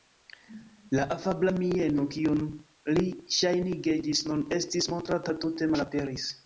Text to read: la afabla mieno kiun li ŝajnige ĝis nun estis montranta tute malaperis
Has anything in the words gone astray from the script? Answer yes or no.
no